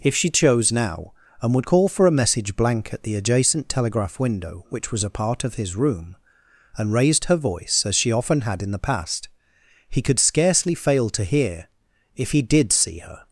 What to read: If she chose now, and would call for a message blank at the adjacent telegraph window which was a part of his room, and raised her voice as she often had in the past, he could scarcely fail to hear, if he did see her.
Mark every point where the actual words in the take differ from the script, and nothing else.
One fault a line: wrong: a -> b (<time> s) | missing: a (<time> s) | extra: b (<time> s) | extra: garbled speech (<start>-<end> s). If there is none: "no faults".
no faults